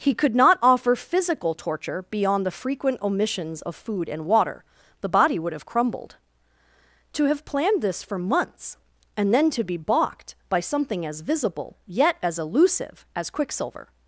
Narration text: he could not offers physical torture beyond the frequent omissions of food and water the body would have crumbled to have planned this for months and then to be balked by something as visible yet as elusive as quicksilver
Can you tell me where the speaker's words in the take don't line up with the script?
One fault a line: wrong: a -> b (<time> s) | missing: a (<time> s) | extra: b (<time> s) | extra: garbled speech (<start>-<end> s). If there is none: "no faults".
wrong: offers -> offer (0.6 s)